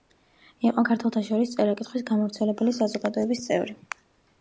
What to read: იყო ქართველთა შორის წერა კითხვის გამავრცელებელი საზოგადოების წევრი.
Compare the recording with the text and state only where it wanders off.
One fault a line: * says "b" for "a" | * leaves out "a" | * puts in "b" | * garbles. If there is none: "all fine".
all fine